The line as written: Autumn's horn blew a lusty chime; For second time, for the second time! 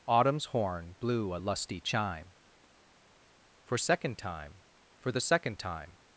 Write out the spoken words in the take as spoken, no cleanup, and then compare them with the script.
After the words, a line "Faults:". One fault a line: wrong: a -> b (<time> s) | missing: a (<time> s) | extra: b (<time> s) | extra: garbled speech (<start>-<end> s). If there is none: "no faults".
Autumn's horn blew a lusty chime; For second time, for the second time!
Faults:
no faults